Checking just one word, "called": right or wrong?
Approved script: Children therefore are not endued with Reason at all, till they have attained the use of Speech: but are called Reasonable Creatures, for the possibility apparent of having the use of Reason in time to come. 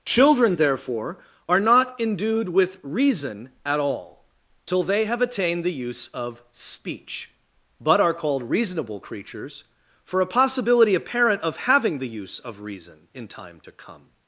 right